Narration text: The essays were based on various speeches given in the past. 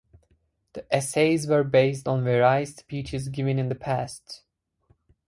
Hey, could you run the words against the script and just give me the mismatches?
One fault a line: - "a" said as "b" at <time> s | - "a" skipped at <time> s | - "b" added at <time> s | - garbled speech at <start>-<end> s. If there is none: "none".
none